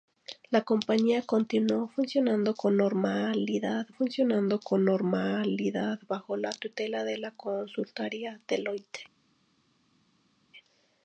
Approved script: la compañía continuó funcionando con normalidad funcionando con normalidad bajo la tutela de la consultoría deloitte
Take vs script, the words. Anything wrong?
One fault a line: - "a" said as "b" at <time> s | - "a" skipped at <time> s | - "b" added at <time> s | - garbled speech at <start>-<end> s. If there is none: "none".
none